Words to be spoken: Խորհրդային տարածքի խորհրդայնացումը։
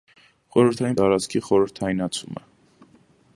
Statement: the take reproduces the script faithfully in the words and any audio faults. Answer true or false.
true